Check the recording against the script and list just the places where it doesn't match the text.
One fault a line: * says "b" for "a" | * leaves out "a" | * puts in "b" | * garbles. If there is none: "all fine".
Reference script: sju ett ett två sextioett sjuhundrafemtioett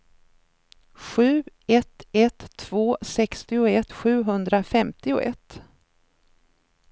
all fine